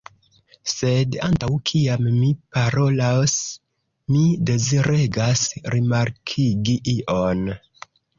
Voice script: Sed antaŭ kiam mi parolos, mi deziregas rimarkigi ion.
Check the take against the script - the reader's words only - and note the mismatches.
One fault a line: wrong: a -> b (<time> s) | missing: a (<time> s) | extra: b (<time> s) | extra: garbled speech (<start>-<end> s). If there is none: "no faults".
no faults